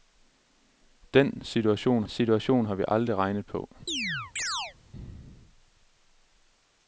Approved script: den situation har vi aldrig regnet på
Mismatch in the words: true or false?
true